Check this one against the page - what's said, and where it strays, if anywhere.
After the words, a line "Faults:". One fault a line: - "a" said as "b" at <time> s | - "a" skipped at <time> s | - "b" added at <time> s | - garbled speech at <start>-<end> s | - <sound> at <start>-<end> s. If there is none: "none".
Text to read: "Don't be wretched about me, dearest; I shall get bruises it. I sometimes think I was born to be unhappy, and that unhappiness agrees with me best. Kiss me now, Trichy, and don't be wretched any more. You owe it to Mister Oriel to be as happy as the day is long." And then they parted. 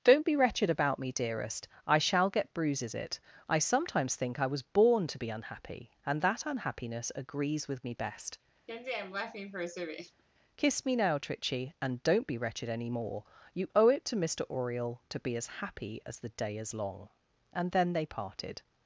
"Don't be wretched about me, dearest; I shall get bruises it. I sometimes think I was born to be unhappy, and that unhappiness agrees with me best. Kiss me now, Trichy, and don't be wretched any more. You owe it to Mister Oriel to be as happy as the day is long." And then they parted.
Faults:
- laugh at 8.7-10.2 s